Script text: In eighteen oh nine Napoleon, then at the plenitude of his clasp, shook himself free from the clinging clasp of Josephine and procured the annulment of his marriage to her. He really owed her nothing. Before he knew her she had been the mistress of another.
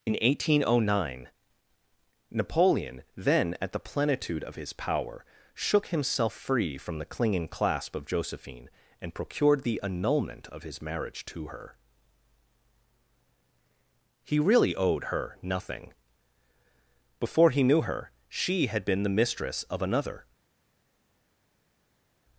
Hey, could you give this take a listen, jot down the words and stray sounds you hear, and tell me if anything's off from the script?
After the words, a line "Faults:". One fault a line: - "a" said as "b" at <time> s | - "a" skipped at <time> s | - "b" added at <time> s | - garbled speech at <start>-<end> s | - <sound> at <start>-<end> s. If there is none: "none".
In eighteen oh nine Napoleon, then at the plenitude of his power, shook himself free from the clinging clasp of Josephine and procured the annulment of his marriage to her. He really owed her nothing. Before he knew her she had been the mistress of another.
Faults:
- "clasp" said as "power" at 4.7 s